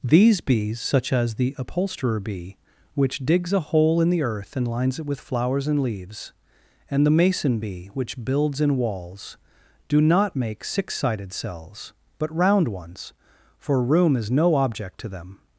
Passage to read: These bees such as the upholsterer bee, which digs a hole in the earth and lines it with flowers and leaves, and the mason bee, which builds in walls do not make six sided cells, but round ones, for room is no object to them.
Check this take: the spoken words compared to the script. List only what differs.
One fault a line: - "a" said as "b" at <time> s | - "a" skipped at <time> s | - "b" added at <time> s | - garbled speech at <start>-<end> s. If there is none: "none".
none